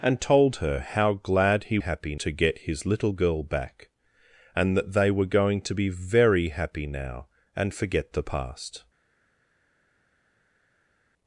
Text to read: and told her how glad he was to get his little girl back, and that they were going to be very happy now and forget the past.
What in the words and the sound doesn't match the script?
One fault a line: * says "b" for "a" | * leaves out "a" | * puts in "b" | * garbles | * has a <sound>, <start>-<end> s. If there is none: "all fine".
* says "happy" for "was"